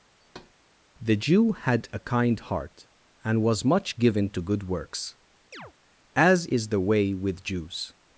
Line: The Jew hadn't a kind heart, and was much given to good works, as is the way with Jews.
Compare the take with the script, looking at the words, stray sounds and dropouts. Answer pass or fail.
fail